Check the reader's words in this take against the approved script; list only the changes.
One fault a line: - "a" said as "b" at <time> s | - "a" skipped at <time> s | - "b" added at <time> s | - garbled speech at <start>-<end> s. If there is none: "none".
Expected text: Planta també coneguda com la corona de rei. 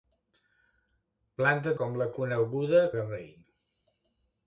- "també coneguda" skipped at 1.8 s
- "corona" said as "coneguda" at 2.2 s